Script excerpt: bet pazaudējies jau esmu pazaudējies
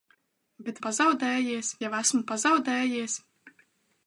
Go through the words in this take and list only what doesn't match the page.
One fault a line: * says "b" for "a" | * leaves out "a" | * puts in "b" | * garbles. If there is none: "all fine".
all fine